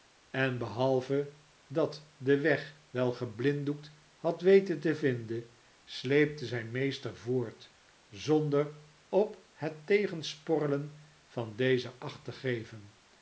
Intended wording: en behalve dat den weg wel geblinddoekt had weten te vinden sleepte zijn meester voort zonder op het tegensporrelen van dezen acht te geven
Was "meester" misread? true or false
false